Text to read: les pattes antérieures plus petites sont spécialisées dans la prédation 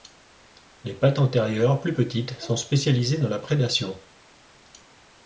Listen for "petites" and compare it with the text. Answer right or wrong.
right